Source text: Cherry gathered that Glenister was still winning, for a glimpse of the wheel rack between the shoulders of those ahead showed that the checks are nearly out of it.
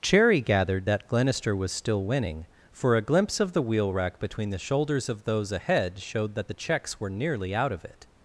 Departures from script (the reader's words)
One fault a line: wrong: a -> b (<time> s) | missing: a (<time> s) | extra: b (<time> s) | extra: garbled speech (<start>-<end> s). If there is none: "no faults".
wrong: are -> were (7.0 s)